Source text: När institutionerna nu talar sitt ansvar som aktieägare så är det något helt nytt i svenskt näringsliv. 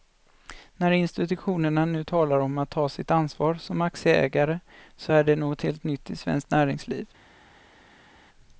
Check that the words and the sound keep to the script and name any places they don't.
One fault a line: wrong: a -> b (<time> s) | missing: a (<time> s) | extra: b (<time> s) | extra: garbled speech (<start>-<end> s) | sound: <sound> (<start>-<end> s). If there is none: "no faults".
extra: om att ta (2.4 s)